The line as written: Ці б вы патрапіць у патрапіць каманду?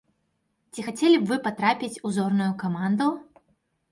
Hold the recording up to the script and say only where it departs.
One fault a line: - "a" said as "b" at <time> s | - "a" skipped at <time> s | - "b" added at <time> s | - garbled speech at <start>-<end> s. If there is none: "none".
- "хацелі" added at 0.8 s
- "патрапіць" said as "зорную" at 2.2 s